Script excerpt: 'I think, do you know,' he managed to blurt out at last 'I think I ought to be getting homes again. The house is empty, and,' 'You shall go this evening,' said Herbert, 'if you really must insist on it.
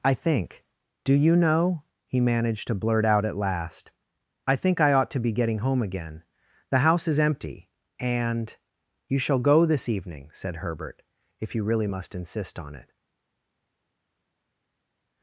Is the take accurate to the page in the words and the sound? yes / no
no